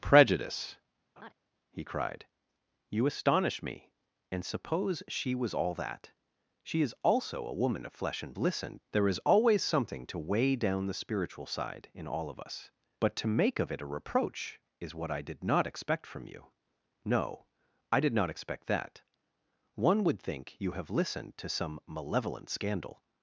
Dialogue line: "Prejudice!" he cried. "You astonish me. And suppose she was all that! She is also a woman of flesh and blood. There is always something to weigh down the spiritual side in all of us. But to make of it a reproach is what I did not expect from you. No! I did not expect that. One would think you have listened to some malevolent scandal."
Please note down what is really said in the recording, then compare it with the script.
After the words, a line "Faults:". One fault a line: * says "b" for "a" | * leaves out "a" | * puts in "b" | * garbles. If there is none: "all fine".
"Prejudice!" he cried. "You astonish me. And suppose she was all that! She is also a woman of flesh and listened. There is always something to weigh down the spiritual side in all of us. But to make of it a reproach is what I did not expect from you. No! I did not expect that. One would think you have listened to some malevolent scandal."
Faults:
* says "listened" for "blood"